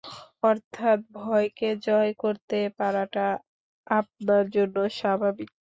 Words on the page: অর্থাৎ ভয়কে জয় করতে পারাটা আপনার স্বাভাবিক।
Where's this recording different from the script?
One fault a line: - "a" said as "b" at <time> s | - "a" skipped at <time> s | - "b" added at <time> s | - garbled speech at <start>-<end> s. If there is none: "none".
- "জন্য" added at 4.5 s